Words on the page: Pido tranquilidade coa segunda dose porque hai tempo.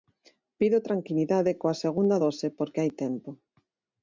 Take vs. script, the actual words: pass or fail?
pass